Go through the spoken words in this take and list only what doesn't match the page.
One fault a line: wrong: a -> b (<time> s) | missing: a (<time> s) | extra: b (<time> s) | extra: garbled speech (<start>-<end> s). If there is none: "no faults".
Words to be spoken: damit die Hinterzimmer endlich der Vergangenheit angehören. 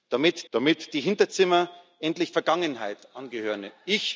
extra: damit (0.5 s)
missing: der (2.3 s)